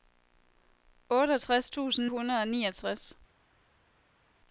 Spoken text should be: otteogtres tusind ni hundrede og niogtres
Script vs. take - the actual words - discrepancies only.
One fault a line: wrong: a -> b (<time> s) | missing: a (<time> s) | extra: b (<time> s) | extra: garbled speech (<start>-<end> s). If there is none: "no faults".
missing: ni (2.1 s)